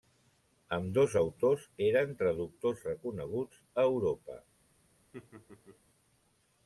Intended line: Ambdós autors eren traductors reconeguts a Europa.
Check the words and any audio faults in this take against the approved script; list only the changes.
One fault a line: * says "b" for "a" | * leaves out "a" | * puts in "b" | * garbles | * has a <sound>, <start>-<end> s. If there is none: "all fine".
* has a laugh, 5.1-5.8 s